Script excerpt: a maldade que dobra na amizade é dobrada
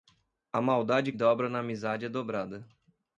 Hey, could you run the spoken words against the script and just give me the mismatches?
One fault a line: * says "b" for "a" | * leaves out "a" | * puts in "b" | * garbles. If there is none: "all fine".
* leaves out "que"